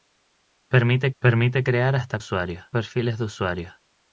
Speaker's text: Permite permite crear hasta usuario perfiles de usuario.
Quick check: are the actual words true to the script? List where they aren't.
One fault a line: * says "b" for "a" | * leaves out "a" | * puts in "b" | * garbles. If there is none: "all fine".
all fine